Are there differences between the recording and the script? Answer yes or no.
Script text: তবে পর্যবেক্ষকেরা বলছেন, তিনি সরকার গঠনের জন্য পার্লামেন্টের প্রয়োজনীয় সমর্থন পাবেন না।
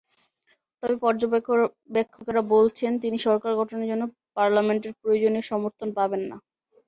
no